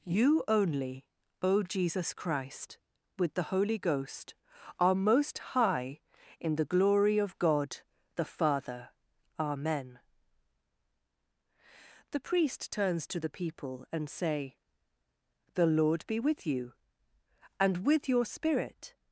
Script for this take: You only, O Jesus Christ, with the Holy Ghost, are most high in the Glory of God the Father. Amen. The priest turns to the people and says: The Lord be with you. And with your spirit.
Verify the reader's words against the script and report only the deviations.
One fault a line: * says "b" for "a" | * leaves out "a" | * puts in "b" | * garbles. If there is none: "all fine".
* says "say" for "says"